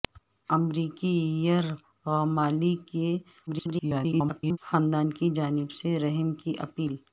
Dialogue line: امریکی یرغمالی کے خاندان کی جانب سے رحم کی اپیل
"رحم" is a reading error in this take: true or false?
false